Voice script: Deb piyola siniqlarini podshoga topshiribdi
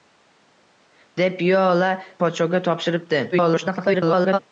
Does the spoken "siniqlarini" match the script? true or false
false